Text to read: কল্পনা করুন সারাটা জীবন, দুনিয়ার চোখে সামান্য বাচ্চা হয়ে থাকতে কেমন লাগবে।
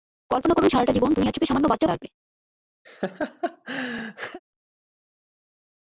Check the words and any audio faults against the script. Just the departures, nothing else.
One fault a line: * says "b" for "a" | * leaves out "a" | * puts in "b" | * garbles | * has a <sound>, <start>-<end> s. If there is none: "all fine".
* leaves out "হয়ে থাকতে কেমন"
* has a laugh, 2.8-4.4 s